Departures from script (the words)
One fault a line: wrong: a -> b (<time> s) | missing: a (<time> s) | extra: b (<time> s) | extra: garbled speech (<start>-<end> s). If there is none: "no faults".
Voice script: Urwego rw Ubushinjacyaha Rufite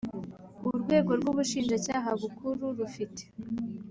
extra: Bukuru (2.2 s)